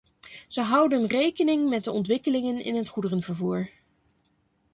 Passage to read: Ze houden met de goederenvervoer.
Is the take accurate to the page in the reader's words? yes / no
no